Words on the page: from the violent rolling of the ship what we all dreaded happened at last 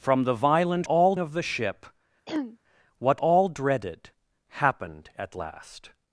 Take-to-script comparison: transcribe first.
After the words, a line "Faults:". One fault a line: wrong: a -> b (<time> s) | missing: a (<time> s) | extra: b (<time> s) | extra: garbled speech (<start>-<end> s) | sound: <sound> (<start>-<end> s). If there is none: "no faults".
from the violent all of the ship what all dreaded happened at last
Faults:
wrong: rolling -> all (0.8 s)
sound: throat clearing (2.3-2.6 s)
missing: we (3.2 s)